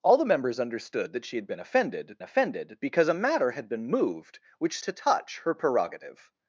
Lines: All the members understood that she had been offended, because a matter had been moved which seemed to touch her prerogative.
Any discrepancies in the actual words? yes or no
yes